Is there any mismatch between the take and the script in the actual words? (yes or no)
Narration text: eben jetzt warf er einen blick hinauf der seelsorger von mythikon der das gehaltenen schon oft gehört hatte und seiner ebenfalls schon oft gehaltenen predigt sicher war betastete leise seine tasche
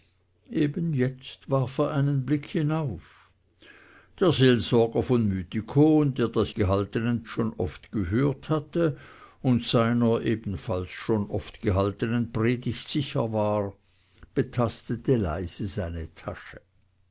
no